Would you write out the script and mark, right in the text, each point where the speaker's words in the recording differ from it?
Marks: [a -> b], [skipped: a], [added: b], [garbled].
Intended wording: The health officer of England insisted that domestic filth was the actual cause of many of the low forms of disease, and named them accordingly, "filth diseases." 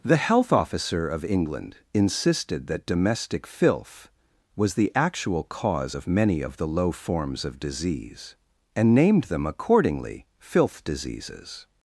The health officer of England insisted that domestic filth was the actual cause of many of the low forms of disease, and named them accordingly, "filth diseases."